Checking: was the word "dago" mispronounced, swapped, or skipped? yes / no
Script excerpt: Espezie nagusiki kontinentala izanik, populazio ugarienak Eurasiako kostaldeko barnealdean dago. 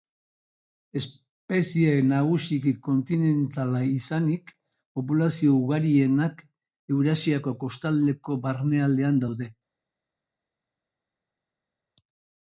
yes